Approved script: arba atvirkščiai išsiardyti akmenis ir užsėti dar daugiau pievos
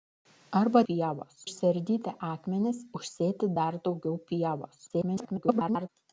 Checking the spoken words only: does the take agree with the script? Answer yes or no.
no